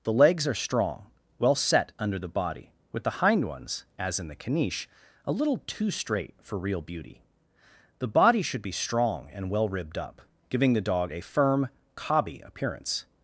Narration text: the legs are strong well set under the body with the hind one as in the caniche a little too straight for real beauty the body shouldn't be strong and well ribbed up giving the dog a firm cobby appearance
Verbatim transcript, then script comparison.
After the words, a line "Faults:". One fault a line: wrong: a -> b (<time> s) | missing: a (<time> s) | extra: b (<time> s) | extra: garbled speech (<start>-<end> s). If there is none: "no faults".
the legs are strong well set under the body with the hind ones as in the caniche a little too straight for real beauty the body should be strong and well ribbed up giving the dog a firm cobby appearance
Faults:
wrong: one -> ones (3.5 s)
wrong: shouldn't -> should (8.4 s)